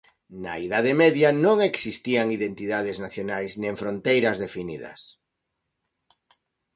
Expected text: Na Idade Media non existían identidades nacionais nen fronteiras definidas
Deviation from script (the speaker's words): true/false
false